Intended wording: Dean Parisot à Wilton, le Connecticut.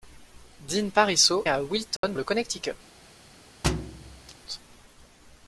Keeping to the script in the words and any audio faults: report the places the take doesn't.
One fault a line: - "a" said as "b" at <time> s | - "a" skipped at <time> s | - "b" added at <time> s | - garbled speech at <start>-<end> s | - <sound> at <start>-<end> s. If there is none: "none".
- dropout at 2.0-2.0 s
- thud at 3.6-4.4 s